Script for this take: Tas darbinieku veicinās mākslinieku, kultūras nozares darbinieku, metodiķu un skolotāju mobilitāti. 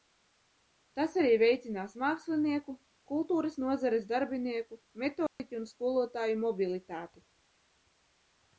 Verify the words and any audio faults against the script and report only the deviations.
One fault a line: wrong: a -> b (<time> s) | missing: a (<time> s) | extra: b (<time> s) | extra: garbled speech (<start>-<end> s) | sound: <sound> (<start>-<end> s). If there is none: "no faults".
wrong: darbinieku -> arī (1.2 s)
sound: dropout (5.3-5.4 s)